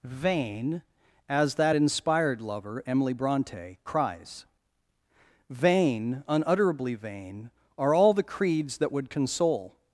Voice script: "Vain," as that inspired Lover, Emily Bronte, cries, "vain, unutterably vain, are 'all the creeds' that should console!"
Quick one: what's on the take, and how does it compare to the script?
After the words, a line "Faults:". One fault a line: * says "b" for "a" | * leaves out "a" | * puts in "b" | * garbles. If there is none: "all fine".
"Vain," as that inspired Lover, Emily Bronte, cries, "vain, unutterably vain, are 'all the creeds' that would console!"
Faults:
* says "would" for "should"